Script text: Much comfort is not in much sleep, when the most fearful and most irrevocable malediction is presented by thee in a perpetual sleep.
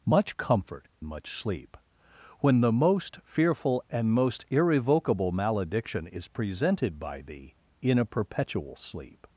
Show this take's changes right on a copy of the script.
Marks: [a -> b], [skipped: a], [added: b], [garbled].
Much comfort [skipped: is not in] much sleep, when the most fearful and most irrevocable malediction is presented by thee in a perpetual sleep.